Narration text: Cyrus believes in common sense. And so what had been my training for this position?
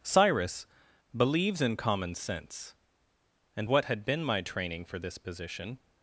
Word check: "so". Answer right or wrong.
wrong